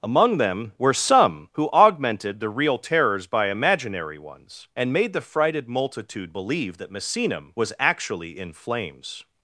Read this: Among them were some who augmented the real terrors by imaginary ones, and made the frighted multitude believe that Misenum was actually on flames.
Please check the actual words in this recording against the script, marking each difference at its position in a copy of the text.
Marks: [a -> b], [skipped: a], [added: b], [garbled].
Among them were some who augmented the real terrors by imaginary ones, and made the frighted multitude believe that Misenum was actually [on -> in] flames.